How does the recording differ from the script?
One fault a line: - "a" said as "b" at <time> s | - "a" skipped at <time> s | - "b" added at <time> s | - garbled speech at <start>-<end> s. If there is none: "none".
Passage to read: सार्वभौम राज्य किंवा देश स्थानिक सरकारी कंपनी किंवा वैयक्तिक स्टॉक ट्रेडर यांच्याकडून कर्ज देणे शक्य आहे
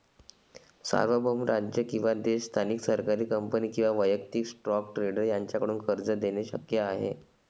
none